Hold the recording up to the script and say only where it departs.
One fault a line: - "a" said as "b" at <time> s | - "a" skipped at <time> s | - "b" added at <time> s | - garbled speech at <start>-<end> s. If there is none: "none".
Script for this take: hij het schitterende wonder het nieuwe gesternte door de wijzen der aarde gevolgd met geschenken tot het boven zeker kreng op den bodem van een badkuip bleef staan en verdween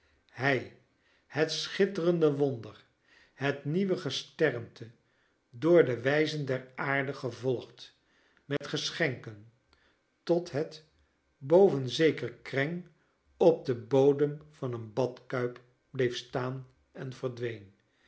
none